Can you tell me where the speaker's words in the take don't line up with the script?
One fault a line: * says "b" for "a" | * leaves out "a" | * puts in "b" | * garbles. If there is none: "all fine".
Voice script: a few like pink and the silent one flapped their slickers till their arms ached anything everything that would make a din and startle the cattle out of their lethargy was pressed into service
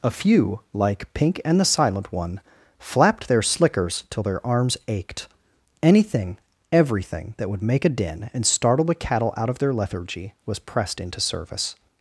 all fine